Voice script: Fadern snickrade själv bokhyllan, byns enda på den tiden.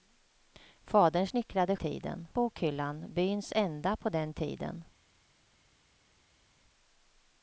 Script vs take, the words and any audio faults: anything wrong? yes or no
yes